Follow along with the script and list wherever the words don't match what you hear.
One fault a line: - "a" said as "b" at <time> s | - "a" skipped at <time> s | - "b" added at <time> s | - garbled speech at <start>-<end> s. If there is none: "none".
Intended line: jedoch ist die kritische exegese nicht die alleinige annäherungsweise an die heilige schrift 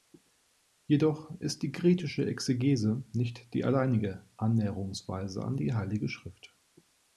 none